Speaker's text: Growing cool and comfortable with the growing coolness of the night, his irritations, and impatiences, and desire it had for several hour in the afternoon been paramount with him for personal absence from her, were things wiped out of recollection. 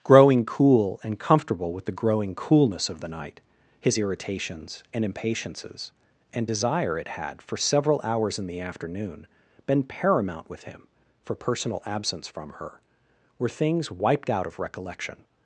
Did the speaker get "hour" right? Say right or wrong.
wrong